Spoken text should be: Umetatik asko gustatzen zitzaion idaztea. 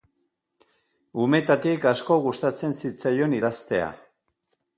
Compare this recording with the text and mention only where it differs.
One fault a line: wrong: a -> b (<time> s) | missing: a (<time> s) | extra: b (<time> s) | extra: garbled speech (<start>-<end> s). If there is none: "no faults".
no faults